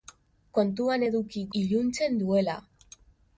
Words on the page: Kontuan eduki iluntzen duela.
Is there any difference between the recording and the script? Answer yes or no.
no